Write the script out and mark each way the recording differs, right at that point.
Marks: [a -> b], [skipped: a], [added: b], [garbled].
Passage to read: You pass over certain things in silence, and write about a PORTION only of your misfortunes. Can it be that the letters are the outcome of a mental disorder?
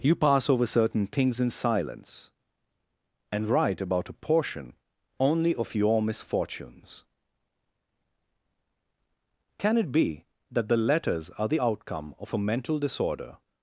You pass over certain things in silence, and write about a PORTION only of your misfortunes. Can it be that the letters are the outcome of a mental disorder?